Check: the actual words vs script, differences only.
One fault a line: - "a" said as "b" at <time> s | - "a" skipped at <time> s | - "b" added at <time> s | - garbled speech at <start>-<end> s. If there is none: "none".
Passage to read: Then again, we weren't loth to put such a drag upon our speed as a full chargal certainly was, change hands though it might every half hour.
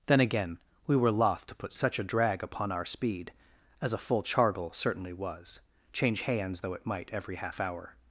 - "weren't" said as "were" at 0.9 s